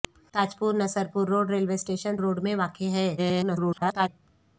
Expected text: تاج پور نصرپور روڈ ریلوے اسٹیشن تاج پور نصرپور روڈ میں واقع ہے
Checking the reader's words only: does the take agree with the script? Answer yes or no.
no